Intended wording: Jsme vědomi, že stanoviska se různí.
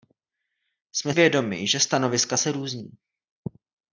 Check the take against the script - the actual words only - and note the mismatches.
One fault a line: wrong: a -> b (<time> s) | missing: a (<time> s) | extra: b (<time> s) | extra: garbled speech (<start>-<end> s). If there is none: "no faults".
no faults